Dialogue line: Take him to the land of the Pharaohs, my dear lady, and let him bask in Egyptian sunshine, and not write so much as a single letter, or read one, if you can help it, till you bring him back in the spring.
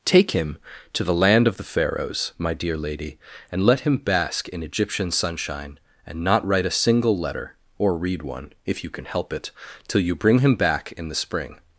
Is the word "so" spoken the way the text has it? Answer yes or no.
no